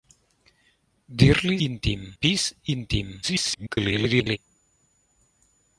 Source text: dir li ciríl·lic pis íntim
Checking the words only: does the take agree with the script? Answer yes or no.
no